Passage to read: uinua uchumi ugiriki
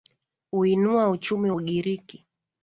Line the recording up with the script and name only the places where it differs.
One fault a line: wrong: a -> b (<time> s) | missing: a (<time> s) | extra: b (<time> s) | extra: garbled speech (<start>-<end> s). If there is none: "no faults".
no faults